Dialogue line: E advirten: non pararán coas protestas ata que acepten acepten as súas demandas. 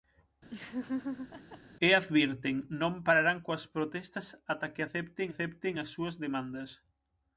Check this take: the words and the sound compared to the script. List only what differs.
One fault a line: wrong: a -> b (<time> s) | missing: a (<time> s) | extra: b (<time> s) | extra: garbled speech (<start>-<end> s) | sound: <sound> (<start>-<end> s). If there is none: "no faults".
sound: laugh (0.5-1.6 s)